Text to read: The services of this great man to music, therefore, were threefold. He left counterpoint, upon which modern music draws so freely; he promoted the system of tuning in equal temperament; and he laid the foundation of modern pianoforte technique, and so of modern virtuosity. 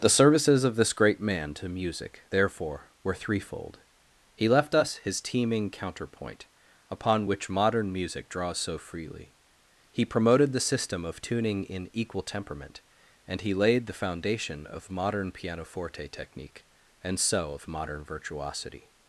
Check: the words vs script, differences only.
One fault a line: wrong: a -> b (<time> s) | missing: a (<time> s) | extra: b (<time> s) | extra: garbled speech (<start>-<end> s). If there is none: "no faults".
extra: us his teeming (4.7 s)